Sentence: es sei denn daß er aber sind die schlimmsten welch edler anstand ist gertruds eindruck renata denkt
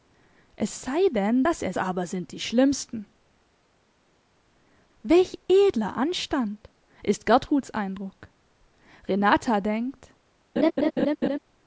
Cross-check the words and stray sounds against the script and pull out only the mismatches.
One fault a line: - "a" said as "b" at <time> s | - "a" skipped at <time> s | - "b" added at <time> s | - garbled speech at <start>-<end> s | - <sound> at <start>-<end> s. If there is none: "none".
- laugh at 10.6-11.4 s